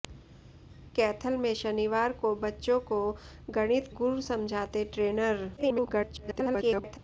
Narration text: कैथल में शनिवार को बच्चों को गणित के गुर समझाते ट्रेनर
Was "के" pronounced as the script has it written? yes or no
no